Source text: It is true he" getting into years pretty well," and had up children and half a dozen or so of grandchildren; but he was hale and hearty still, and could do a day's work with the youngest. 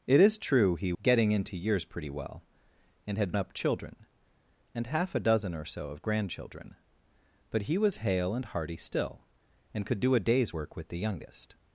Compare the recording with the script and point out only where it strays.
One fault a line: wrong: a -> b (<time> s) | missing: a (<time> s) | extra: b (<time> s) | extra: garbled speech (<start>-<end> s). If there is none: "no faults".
no faults